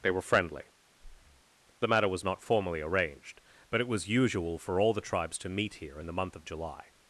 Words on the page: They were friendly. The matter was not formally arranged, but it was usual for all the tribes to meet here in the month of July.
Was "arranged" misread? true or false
false